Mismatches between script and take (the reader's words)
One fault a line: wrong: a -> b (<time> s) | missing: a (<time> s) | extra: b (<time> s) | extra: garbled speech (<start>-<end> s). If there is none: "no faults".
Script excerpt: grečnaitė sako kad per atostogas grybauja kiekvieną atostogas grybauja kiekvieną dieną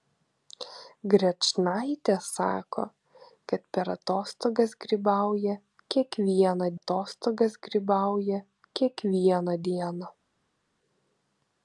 no faults